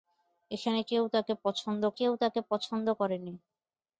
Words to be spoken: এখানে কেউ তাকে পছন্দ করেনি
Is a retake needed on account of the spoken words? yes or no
yes